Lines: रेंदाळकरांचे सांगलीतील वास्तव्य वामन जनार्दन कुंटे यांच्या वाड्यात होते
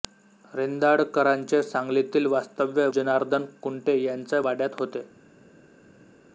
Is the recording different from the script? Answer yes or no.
yes